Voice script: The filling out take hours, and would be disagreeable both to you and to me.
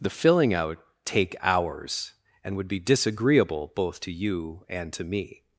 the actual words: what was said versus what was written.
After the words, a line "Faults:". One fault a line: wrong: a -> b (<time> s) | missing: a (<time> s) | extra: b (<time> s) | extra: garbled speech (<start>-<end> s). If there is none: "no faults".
The filling out take hours, and would be disagreeable both to you and to me.
Faults:
no faults